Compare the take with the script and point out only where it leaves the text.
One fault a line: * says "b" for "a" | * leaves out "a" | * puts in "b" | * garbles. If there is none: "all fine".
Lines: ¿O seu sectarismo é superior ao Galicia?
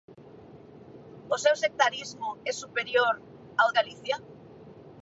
all fine